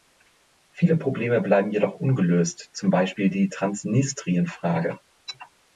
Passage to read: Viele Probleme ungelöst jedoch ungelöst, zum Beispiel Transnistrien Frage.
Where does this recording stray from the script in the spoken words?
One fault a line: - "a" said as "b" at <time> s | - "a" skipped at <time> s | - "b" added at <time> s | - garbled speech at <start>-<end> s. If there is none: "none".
- "ungelöst" said as "bleiben" at 1.4 s
- "die" added at 3.3 s